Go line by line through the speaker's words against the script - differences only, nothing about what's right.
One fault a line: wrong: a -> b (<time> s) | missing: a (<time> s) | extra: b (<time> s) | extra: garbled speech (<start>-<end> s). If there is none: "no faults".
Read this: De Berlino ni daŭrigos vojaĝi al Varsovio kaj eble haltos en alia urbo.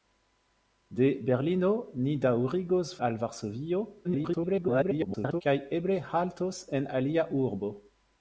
missing: vojaĝi (2.9 s)
extra: garbled speech (4.0-5.4 s)